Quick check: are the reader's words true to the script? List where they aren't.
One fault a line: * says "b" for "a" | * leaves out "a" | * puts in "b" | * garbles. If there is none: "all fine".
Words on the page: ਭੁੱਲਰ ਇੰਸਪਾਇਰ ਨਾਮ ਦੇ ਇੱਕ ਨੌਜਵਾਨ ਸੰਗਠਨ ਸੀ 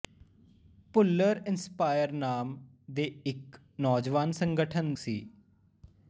all fine